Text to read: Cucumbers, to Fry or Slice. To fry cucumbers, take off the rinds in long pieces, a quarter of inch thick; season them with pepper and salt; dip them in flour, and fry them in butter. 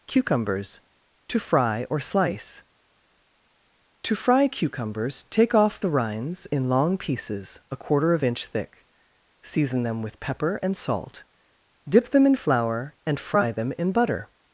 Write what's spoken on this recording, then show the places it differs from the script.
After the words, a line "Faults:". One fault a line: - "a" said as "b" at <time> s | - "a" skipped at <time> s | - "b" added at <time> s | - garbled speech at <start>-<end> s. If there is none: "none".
Cucumbers, to Fry or Slice. To fry cucumbers, take off the rinds in long pieces, a quarter of inch thick; season them with pepper and salt; dip them in flour, and fry them in butter.
Faults:
none